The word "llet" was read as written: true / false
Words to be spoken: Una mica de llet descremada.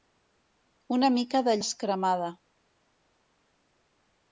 false